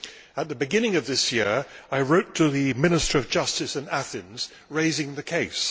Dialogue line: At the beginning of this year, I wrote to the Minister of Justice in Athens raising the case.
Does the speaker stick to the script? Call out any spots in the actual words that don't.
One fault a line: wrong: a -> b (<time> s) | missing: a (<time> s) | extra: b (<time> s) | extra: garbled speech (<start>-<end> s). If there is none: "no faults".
no faults